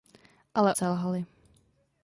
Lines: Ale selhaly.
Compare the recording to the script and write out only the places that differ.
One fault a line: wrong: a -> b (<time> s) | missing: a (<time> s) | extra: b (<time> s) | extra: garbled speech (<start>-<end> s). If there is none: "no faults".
no faults